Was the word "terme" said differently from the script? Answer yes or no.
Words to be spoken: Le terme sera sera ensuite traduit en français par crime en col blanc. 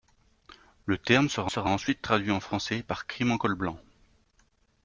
no